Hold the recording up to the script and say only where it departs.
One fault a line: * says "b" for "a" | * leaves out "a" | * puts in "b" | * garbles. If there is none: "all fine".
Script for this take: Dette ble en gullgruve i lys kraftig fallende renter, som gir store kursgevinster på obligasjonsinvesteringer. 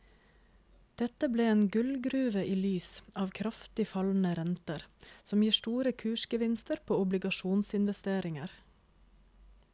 * puts in "av"